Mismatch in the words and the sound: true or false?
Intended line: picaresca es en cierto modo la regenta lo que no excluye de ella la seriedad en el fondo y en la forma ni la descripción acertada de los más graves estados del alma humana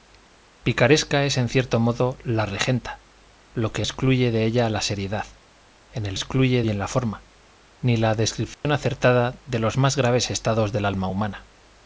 true